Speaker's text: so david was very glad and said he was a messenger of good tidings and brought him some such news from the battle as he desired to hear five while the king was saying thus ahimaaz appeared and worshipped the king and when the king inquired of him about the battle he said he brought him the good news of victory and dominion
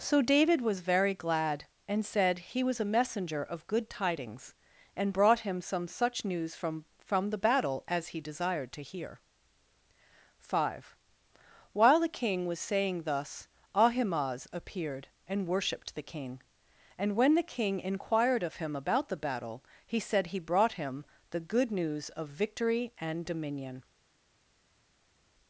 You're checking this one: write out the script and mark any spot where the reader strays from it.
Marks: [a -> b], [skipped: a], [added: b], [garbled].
so david was very glad and said he was a messenger of good tidings and brought him some such news from [added: from] the battle as he desired to hear five while the king was saying thus ahimaaz appeared and worshipped the king and when the king inquired of him about the battle he said he brought him the good news of victory and dominion